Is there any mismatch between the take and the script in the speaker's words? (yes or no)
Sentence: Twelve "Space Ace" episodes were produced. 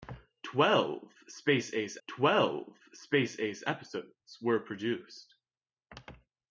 yes